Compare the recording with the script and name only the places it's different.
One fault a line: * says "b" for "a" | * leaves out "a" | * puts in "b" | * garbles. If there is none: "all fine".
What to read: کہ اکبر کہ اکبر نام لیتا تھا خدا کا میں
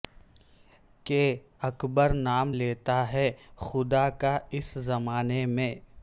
* leaves out "کہ اکبر"
* says "ہے" for "تھا"
* puts in "اس زمانے"